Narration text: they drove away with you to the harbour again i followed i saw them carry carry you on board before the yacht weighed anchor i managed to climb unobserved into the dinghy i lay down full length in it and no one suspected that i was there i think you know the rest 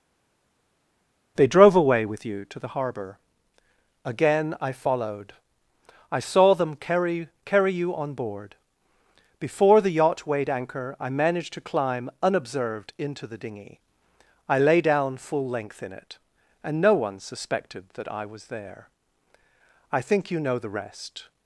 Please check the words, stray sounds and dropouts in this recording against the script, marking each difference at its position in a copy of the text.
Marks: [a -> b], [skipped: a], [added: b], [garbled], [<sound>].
they drove away with you to the harbour again i followed i saw them carry carry you on board before the yacht weighed anchor i managed to climb unobserved into the dinghy i lay down full length in it and no one suspected that i was there i think you know the rest